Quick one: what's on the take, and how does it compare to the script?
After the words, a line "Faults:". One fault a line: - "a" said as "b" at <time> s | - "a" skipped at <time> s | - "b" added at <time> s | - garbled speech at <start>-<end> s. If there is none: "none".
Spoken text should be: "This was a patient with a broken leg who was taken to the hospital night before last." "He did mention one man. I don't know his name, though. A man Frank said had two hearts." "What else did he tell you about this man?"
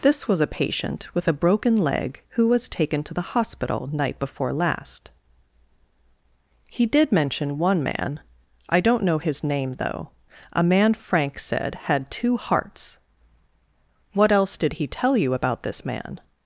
"This was a patient with a broken leg who was taken to the hospital night before last." "He did mention one man. I don't know his name, though. A man Frank said had two hearts." "What else did he tell you about this man?"
Faults:
none